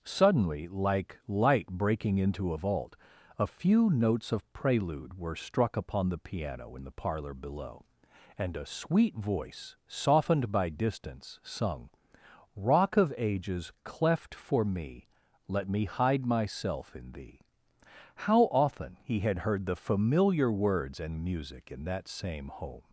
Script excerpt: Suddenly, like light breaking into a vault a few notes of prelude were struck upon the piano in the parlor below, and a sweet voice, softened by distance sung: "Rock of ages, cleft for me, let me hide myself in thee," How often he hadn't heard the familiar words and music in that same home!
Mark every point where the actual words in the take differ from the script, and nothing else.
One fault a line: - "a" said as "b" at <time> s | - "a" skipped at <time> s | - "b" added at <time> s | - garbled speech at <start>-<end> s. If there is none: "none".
- "hadn't" said as "had" at 19.2 s